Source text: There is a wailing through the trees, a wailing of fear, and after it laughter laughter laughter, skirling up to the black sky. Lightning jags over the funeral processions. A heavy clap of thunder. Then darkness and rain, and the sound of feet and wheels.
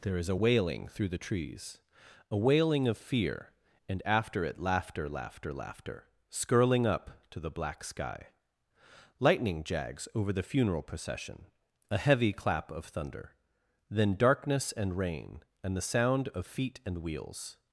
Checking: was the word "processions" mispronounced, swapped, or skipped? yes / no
yes